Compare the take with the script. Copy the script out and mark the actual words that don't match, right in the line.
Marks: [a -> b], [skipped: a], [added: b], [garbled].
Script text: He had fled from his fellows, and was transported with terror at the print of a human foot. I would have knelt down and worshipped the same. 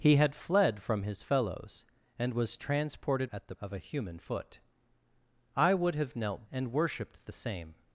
He had fled from his fellows, and was transported [skipped: with terror] at the [skipped: print] of a human foot. I would have knelt [skipped: down] and worshipped the same.